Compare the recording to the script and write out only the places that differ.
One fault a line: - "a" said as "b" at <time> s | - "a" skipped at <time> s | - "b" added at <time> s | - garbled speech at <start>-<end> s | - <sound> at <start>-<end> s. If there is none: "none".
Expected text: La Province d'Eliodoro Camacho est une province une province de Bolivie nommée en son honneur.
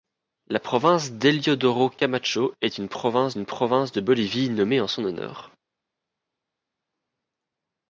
none